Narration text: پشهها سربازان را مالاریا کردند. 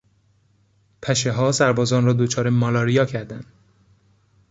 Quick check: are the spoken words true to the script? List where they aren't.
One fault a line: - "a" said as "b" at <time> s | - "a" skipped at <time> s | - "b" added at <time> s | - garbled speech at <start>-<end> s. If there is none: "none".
- "دچار" added at 2.1 s